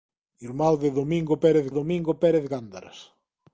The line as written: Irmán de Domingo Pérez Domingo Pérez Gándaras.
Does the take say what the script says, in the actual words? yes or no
yes